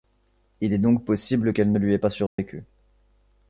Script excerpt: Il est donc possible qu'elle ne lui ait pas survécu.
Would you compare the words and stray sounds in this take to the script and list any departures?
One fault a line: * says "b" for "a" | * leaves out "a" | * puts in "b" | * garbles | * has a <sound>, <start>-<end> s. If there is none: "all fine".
* has a dropout, 2.3-2.4 s